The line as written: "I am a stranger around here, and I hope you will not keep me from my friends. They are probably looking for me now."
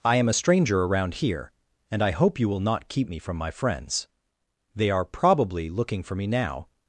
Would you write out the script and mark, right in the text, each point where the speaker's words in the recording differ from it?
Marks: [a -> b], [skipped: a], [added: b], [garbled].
"I am a stranger around here, and I hope you will not keep me from my friends. They are probably looking for me now."